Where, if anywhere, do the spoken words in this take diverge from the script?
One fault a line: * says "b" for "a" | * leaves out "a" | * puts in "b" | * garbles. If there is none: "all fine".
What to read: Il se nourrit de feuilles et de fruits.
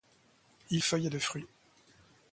* leaves out "se nourrit de"